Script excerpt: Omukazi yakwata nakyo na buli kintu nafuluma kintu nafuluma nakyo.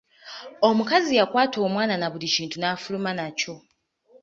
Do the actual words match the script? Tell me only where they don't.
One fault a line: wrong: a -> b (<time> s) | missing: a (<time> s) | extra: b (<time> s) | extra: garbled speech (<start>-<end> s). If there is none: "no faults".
wrong: nakyo -> omwana (1.7 s)
missing: kintu nafuluma (3.1 s)